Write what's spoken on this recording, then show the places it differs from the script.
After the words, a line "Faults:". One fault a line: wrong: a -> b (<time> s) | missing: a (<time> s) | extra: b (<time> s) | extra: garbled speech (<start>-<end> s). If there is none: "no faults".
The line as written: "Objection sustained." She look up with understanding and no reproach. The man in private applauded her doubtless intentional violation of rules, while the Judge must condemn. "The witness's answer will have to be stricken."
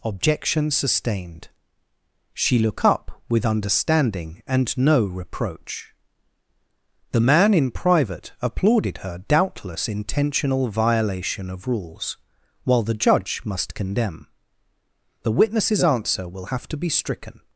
"Objection sustained." She look up with understanding and no reproach. The man in private applauded her doubtless intentional violation of rules, while the Judge must condemn. "The witness's answer will have to be stricken."
Faults:
no faults